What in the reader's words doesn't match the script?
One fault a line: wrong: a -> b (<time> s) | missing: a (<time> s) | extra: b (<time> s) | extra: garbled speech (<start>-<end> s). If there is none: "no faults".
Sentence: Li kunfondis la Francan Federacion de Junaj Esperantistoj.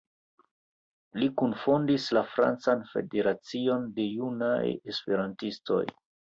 no faults